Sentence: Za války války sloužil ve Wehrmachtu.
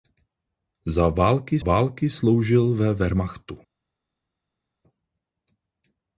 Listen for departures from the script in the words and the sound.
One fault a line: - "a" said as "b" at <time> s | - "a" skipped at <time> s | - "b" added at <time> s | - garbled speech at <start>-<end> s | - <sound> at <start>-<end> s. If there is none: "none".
none